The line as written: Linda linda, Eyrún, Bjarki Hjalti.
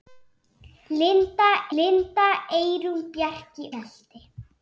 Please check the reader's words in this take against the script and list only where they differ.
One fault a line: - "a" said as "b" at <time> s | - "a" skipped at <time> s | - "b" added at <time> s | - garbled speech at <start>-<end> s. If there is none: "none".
none